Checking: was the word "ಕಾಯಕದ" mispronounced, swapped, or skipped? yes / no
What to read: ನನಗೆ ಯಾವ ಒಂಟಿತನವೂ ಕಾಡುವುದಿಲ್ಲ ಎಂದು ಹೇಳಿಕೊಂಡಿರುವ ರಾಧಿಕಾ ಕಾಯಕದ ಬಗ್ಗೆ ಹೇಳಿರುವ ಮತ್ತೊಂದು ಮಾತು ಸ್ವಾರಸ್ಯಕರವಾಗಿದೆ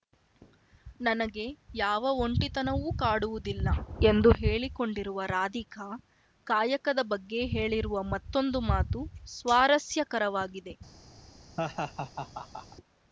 no